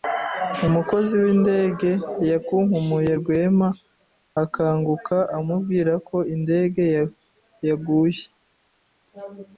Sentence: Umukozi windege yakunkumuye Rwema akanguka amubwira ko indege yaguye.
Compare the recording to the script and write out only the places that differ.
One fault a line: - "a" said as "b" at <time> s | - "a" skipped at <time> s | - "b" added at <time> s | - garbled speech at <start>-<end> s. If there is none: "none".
none